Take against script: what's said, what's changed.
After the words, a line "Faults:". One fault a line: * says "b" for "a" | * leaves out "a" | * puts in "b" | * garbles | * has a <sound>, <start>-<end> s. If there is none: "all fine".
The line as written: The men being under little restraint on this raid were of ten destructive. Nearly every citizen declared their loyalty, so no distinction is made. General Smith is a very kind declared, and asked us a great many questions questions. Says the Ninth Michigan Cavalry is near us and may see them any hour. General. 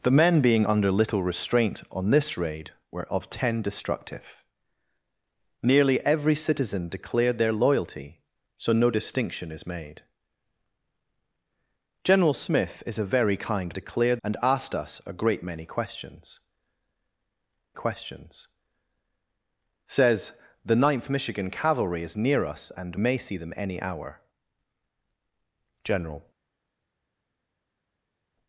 The men being under little restraint on this raid were of ten destructive. Nearly every citizen declared their loyalty, so no distinction is made. General Smith is a very kind declared, and asked us a great many questions questions. Says the Ninth Michigan Cavalry is near us and may see them any hour. General.
Faults:
all fine